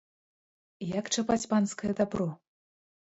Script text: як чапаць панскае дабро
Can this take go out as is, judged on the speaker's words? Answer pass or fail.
pass